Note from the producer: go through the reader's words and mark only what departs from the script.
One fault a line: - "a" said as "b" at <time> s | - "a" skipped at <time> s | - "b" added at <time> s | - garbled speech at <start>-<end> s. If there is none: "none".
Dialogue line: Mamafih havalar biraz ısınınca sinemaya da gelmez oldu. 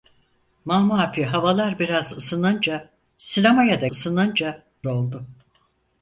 - "gelmez" said as "ısınınca" at 3.8 s